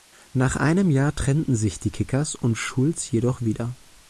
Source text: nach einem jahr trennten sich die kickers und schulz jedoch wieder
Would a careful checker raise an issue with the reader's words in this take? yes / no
no